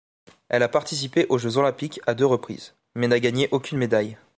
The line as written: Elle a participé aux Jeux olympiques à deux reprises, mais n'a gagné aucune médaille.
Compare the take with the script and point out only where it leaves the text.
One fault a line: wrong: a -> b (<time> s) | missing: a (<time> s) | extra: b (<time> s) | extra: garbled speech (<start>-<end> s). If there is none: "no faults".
no faults